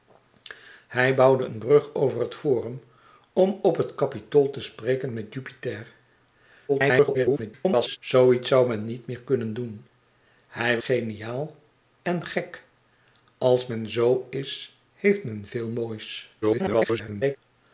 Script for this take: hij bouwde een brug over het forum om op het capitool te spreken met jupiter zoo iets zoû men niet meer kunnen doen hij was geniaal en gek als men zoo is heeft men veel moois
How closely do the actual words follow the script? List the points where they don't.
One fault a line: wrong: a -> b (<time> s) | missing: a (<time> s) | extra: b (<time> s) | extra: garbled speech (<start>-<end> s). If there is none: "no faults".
extra: garbled speech (6.7-8.0 s)
missing: was (10.8 s)
extra: garbled speech (16.4-17.4 s)